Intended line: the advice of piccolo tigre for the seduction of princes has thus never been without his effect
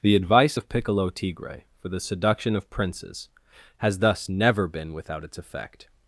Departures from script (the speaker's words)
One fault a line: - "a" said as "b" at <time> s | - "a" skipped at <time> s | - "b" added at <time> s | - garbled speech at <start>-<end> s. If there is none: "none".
- "his" said as "its" at 5.2 s